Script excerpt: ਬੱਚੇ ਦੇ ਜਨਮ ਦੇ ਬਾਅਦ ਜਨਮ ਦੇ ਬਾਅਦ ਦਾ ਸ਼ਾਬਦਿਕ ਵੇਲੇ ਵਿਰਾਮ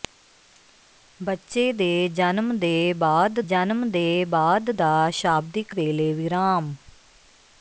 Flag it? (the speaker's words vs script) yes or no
no